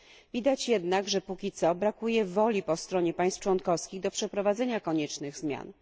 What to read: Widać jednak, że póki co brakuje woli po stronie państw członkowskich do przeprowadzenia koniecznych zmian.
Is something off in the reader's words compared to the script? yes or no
no